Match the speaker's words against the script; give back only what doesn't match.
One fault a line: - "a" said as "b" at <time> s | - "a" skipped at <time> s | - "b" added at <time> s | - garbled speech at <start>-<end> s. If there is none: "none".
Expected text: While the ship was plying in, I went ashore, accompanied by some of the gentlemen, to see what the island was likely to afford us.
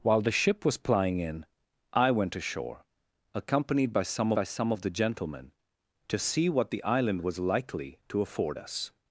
- "by some" added at 4.3 s